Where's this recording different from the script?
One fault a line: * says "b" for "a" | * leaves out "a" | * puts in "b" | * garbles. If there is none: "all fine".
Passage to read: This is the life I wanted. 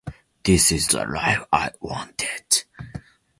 all fine